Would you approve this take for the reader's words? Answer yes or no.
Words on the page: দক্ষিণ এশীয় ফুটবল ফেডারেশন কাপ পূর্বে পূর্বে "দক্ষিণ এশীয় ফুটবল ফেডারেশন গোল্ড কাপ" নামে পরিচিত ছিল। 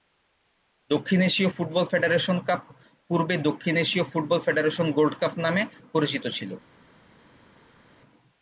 no